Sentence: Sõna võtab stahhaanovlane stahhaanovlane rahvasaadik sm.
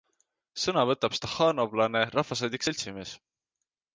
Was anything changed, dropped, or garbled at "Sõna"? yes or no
no